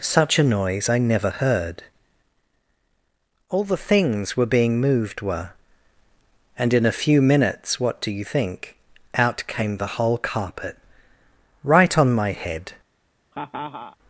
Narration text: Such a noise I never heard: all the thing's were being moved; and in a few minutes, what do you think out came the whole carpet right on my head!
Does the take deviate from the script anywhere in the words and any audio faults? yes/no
yes